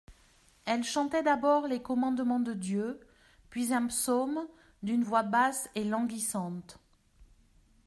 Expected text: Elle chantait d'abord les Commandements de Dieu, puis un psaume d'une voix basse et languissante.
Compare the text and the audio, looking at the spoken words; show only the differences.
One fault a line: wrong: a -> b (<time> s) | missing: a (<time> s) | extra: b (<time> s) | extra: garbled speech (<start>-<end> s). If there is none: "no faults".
no faults